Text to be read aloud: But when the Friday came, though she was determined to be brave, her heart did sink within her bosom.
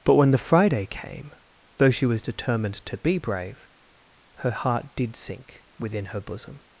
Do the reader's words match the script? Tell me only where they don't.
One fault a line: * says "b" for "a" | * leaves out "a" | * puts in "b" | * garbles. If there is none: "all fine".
all fine